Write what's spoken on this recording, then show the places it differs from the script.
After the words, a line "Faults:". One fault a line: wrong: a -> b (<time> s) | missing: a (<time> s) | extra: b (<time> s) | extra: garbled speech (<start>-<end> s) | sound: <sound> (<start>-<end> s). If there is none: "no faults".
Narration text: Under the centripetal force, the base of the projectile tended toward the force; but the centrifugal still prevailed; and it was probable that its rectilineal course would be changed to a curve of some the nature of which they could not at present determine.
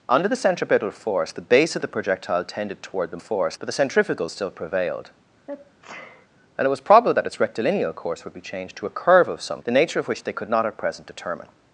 Under the centripetal force, the base of the projectile tended toward the force; but the centrifugal still prevailed; and it was probable that its rectilineal course would be changed to a curve of some the nature of which they could not at present determine.
Faults:
sound: sneeze (5.5-6.3 s)